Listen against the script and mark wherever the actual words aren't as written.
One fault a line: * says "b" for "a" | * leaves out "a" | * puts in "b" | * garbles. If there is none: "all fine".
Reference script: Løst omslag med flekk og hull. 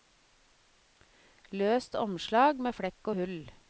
all fine